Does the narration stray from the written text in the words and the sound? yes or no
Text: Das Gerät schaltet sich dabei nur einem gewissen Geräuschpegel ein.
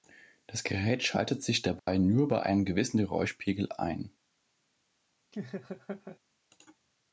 yes